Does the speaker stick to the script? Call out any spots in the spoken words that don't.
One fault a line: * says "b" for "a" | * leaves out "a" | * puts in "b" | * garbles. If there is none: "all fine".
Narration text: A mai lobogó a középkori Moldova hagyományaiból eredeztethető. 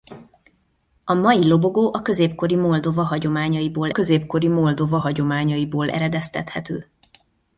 * puts in "középkori Moldova hagyományaiból"